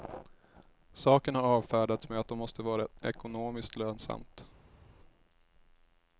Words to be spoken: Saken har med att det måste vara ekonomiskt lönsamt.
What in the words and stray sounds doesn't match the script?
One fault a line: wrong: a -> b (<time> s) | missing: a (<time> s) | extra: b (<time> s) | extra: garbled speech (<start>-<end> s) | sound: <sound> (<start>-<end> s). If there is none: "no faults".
extra: avfärdats (1.4 s)